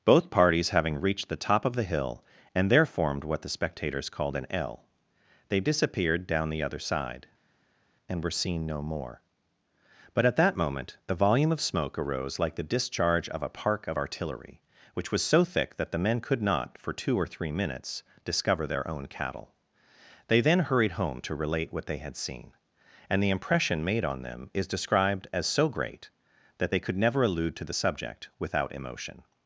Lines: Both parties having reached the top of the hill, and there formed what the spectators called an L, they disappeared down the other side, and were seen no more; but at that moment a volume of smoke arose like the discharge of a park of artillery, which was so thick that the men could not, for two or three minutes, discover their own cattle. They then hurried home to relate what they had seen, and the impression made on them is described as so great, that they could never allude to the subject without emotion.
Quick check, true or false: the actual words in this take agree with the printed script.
false